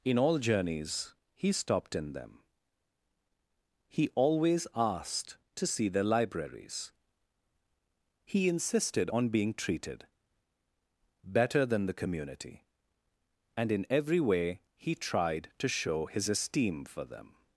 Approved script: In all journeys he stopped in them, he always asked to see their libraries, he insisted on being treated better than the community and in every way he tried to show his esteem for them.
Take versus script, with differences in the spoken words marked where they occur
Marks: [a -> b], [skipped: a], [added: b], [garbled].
In all journeys he stopped in them, he always asked to see their libraries, he insisted on being treated better than the community and in every way he tried to show his esteem for them.